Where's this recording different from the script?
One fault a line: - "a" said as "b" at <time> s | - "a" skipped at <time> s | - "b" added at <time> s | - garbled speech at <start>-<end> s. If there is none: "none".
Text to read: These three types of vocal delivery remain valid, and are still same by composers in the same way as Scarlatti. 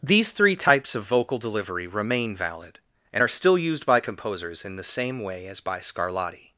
- "same" said as "used" at 3.6 s
- "by" added at 5.6 s